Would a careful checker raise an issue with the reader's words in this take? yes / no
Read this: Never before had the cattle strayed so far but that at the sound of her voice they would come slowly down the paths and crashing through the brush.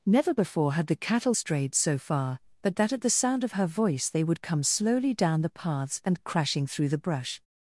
no